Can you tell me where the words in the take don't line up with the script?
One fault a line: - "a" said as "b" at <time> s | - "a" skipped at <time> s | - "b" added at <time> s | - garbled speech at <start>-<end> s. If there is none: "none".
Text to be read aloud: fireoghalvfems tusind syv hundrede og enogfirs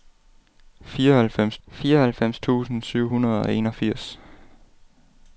- "fireoghalvfems" added at 1.7 s